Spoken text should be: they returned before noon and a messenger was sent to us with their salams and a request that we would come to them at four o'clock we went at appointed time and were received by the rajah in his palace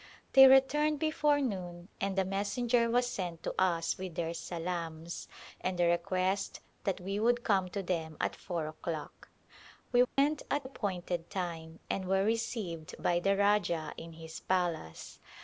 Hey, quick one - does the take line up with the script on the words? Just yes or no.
yes